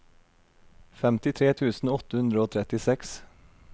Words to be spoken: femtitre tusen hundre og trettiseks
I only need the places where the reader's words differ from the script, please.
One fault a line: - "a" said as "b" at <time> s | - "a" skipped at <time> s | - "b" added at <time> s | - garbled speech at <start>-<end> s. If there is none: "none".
- "åtte" added at 2.0 s